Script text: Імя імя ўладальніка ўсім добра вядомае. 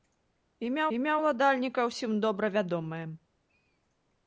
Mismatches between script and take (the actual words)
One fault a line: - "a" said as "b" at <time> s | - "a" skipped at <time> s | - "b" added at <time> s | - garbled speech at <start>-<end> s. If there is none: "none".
none